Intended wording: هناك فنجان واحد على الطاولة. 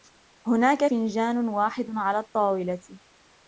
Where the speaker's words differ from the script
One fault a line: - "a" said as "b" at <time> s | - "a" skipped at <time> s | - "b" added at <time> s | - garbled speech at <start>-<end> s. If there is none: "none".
none